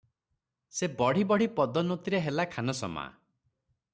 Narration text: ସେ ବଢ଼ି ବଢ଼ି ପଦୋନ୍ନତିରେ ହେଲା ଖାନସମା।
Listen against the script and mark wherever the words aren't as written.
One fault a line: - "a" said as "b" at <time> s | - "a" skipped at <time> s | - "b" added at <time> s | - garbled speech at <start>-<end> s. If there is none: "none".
none